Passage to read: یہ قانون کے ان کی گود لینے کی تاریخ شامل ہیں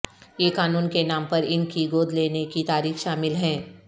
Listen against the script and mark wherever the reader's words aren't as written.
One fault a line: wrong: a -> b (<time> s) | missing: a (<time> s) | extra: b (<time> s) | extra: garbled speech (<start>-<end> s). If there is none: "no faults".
extra: نام پر (1.0 s)